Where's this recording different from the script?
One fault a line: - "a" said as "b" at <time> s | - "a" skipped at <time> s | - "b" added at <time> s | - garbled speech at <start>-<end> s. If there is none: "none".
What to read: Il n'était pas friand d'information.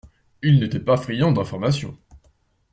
none